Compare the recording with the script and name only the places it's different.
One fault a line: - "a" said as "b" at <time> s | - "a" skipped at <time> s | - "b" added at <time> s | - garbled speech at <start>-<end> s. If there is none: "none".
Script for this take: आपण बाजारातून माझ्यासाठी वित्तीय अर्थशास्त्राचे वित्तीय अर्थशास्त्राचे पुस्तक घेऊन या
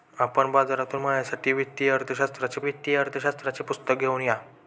none